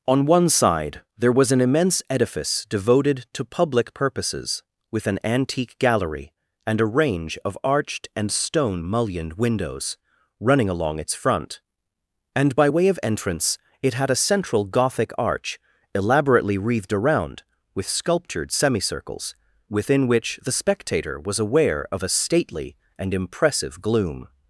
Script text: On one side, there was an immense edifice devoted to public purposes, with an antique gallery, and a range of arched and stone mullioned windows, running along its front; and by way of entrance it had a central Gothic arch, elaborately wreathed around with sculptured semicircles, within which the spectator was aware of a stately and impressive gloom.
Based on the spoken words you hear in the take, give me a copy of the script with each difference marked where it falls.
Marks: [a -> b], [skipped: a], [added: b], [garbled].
On one side, there was an immense edifice devoted to public purposes, with an antique gallery, and a range of arched and stone mullioned windows, running along its front; and by way of entrance it had a central Gothic arch, elaborately wreathed around with sculptured semicircles, within which the spectator was aware of a stately and impressive gloom.